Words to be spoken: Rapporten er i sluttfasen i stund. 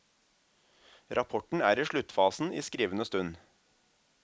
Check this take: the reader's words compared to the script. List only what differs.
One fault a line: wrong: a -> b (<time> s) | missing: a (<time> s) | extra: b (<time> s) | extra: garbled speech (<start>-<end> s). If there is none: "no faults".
extra: skrivende (2.6 s)